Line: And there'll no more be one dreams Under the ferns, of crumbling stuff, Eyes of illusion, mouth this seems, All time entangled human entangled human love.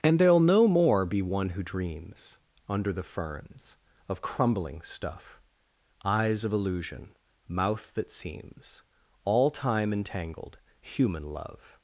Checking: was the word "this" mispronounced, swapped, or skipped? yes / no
yes